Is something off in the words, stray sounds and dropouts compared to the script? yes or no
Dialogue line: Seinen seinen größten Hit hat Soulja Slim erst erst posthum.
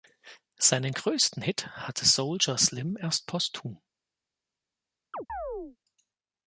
yes